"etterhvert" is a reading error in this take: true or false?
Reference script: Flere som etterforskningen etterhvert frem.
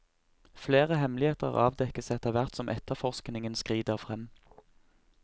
true